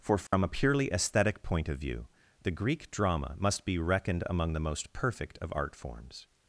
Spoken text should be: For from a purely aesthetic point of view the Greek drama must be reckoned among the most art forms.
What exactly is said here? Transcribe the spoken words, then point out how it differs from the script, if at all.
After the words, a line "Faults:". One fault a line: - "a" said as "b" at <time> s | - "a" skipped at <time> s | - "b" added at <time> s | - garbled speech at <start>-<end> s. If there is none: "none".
For from a purely aesthetic point of view the Greek drama must be reckoned among the most perfect of art forms.
Faults:
- "perfect of" added at 4.9 s